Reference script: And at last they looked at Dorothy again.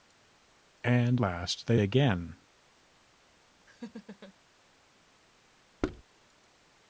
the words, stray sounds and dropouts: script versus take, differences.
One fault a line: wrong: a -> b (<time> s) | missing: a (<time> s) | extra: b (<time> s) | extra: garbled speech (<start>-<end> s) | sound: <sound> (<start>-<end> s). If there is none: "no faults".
missing: at (1.2 s)
missing: looked at Dorothy (1.8 s)
sound: laugh (3.7-4.3 s)
sound: thud (5.8-6.0 s)